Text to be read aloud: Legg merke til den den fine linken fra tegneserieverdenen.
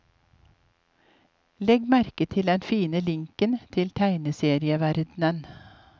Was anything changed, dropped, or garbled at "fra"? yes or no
yes